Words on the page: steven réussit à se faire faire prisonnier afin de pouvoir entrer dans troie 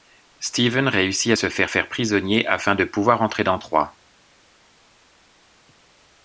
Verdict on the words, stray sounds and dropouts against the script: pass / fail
pass